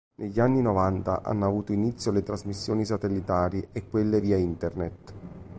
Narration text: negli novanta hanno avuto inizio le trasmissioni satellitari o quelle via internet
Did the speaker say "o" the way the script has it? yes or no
no